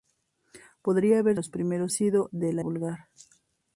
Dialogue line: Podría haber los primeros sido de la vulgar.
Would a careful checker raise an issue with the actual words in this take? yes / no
no